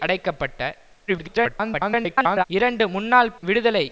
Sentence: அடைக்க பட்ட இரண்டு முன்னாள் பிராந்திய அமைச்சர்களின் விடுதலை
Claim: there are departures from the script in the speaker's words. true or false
true